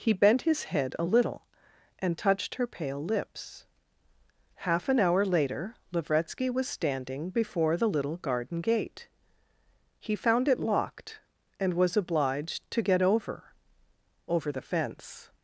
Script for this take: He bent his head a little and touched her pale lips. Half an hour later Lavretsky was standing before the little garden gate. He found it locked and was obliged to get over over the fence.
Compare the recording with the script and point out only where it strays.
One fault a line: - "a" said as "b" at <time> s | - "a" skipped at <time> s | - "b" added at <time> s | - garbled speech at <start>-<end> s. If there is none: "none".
none